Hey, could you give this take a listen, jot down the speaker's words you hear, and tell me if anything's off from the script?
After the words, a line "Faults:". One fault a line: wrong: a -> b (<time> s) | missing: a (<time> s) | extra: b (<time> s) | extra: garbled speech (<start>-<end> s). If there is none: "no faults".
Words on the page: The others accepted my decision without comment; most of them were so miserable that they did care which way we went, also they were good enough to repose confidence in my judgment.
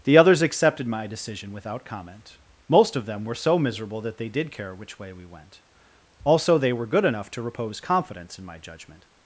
The others accepted my decision without comment; most of them were so miserable that they did care which way we went, also they were good enough to repose confidence in my judgment.
Faults:
no faults